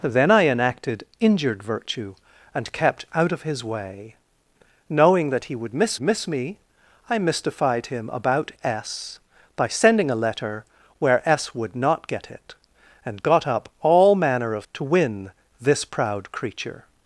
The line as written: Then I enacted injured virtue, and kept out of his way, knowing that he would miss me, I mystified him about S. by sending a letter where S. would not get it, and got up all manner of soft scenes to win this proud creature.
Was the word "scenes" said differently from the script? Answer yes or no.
yes